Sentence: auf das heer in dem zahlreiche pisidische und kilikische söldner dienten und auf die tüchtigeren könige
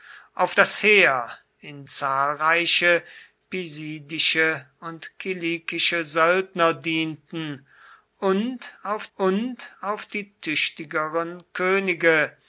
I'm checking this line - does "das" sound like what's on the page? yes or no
yes